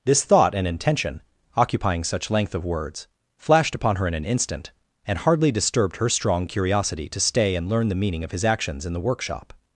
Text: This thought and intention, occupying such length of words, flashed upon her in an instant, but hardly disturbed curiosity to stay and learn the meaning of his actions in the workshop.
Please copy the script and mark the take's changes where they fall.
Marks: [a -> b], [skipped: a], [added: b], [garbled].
This thought and intention, occupying such length of words, flashed upon her in an instant, [but -> and] hardly disturbed [added: her strong] curiosity to stay and learn the meaning of his actions in the workshop.